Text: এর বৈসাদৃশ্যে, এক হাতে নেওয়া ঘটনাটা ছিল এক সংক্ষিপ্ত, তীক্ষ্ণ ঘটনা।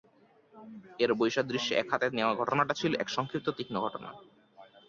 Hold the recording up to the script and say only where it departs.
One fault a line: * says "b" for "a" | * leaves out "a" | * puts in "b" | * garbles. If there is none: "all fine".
all fine